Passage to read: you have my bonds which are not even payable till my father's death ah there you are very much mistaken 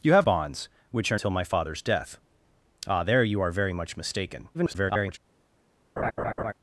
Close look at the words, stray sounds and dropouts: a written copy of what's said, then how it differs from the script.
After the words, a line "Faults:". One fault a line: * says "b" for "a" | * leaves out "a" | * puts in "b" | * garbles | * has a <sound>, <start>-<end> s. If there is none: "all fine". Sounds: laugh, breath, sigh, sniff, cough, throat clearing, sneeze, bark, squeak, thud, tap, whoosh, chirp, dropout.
you have bonds which are till my father's death ah there you are very much mistaken [garbled]
Faults:
* leaves out "my"
* leaves out "not even payable"
* garbles
* has a laugh, 6.0-6.5 s